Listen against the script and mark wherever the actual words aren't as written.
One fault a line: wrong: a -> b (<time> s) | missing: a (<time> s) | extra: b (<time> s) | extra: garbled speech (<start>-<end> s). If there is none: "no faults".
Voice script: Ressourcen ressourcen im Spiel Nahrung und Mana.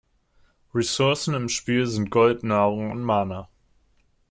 missing: ressourcen (1.4 s)
extra: sind Gold (1.9 s)